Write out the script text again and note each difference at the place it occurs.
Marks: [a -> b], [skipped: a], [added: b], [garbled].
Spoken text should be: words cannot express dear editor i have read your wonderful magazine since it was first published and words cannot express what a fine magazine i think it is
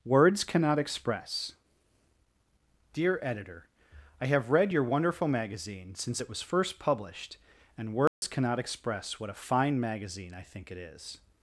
words cannot express dear editor i have read your wonderful magazine since it was first published and words cannot express what a fine magazine i think it is